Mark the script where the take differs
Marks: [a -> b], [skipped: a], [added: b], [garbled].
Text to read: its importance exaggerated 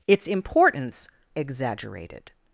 its importance exaggerated